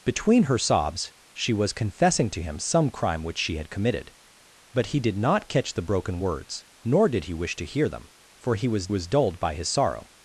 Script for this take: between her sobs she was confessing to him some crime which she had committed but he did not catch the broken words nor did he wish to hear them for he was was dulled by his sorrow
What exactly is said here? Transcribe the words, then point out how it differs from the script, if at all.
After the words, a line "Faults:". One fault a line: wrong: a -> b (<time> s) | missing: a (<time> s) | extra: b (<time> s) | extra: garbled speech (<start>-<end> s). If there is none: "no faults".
between her sobs she was confessing to him some crime which she had committed but he did not catch the broken words nor did he wish to hear them for he was was dulled by his sorrow
Faults:
no faults